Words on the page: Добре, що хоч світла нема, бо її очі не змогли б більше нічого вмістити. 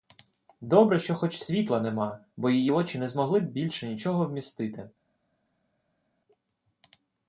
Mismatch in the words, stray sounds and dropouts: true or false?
false